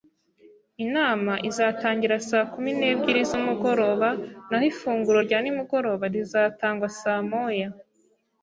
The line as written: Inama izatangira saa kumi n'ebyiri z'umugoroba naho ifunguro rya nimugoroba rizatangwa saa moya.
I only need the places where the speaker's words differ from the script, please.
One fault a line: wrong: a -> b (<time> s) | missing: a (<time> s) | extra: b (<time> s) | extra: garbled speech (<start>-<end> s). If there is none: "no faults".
no faults